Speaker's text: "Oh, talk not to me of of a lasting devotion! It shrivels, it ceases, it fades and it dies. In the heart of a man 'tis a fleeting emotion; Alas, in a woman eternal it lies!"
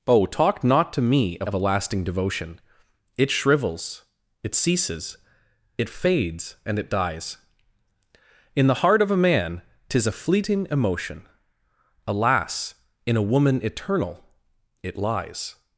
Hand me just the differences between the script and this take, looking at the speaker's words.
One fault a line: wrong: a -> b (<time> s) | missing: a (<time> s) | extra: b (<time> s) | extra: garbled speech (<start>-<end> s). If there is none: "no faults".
no faults